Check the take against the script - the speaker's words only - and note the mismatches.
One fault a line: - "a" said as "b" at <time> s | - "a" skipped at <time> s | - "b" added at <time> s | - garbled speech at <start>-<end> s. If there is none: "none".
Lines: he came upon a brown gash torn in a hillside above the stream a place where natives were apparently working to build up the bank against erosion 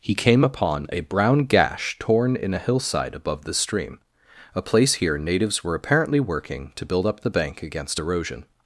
- "where" said as "here" at 4.9 s